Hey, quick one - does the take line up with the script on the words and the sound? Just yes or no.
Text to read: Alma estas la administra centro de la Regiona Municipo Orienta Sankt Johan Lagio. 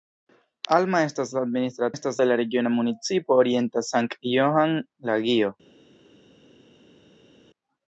no